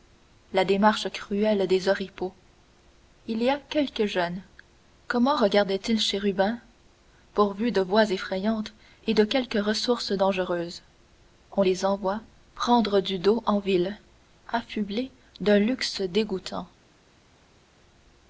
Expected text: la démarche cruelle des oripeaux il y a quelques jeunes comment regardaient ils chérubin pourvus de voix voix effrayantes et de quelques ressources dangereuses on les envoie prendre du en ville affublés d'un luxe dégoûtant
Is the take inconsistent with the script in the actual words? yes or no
yes